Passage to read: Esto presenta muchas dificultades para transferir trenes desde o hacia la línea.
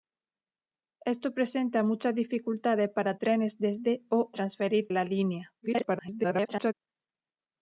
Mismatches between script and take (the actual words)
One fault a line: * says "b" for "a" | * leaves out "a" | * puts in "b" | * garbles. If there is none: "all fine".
* leaves out "transferir"
* says "transferir" for "hacia"
* garbles